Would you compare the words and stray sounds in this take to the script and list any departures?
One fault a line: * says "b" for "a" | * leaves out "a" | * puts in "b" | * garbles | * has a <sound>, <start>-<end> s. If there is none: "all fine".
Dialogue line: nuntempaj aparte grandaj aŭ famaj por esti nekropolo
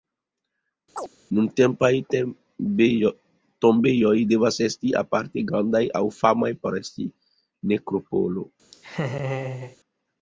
* has a chirp, 1.0-1.1 s
* puts in "tombejoj devas esti"
* has a laugh, 8.7-9.8 s